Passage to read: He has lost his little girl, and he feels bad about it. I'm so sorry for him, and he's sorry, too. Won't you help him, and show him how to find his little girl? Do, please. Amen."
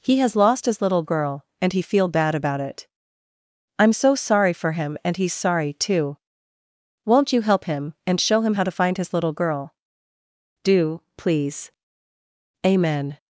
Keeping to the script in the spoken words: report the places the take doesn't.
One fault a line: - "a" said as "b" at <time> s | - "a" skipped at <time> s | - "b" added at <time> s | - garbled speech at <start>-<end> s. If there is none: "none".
- "feels" said as "feel" at 1.8 s